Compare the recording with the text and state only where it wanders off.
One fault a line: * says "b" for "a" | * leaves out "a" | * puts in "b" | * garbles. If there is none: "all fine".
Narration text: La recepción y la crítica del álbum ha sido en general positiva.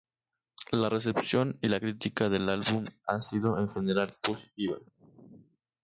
all fine